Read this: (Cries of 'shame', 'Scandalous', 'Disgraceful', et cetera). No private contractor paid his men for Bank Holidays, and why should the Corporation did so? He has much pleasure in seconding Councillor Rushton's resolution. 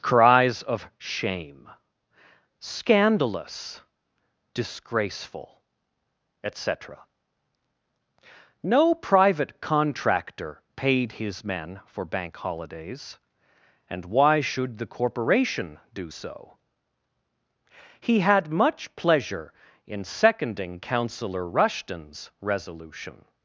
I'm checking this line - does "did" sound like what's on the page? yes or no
no